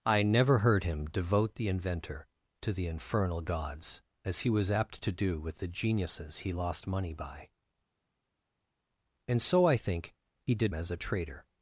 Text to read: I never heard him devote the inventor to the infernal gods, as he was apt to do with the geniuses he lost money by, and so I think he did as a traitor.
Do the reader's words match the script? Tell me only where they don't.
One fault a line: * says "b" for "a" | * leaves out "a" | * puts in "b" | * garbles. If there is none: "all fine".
all fine